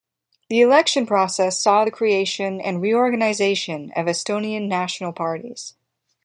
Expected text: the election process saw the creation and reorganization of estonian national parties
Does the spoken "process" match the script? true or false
true